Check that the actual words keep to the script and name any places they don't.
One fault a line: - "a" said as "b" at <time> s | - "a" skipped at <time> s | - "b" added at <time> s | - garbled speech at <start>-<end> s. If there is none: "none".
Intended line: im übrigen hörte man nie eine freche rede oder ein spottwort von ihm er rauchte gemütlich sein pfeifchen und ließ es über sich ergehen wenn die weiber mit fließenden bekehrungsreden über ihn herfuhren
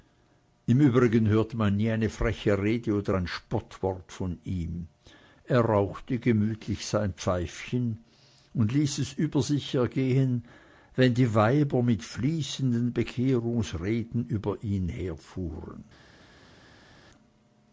none